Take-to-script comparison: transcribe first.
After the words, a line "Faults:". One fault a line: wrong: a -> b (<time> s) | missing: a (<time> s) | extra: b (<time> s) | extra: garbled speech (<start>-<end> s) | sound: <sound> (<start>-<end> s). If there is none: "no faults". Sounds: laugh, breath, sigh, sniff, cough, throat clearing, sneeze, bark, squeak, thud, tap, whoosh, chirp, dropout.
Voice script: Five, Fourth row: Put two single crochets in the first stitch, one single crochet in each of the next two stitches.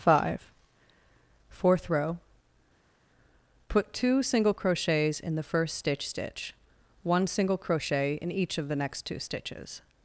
Five, Fourth row: Put two single crochets in the first stitch stitch, one single crochet in each of the next two stitches.
Faults:
extra: stitch (6.1 s)